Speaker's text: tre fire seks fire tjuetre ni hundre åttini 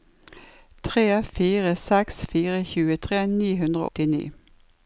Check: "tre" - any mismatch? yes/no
no